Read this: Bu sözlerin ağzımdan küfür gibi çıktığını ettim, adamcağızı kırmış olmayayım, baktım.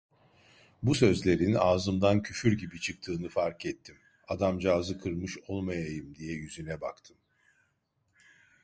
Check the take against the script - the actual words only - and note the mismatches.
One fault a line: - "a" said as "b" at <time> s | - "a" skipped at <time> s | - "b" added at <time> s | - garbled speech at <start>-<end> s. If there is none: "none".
- "fark" added at 3.3 s
- "diye yüzüne" added at 6.1 s